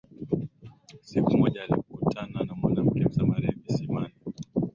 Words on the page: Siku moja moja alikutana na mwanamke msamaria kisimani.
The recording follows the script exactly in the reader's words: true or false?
false